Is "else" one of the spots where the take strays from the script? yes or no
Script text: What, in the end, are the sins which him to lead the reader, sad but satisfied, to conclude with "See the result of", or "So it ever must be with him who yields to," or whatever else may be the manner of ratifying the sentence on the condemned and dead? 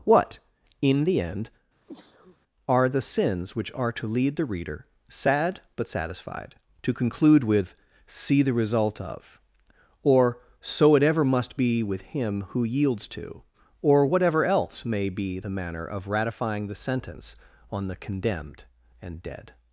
no